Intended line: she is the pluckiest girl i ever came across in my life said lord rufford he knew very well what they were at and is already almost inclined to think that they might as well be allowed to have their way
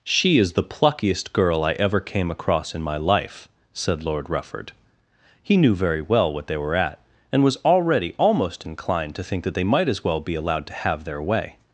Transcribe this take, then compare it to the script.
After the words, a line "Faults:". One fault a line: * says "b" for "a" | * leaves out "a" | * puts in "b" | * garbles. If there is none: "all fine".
she is the pluckiest girl i ever came across in my life said lord rufford he knew very well what they were at and was already almost inclined to think that they might as well be allowed to have their way
Faults:
* says "was" for "is"